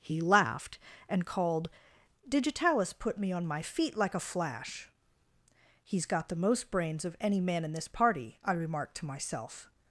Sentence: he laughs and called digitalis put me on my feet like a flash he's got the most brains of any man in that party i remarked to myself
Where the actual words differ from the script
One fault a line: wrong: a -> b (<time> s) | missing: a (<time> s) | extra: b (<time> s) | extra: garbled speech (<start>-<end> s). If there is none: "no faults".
wrong: laughs -> laughed (0.2 s)
wrong: that -> this (7.7 s)